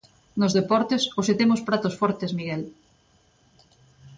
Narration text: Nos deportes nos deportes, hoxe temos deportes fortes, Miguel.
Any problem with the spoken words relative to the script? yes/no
yes